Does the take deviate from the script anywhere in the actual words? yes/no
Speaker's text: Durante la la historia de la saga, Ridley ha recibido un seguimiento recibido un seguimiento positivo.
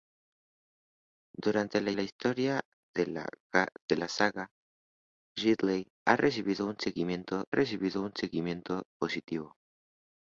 no